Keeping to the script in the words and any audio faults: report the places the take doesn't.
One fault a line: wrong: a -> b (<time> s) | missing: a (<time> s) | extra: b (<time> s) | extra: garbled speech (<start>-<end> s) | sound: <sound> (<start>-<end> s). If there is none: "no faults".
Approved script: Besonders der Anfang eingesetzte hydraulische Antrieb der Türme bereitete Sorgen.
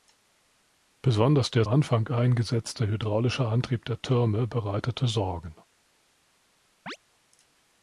sound: chirp (6.9-7.0 s)